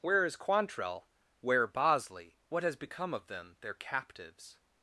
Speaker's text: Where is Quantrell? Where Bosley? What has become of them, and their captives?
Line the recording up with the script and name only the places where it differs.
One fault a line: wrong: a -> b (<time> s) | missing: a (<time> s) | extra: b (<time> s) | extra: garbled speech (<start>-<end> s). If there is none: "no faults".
missing: and (3.6 s)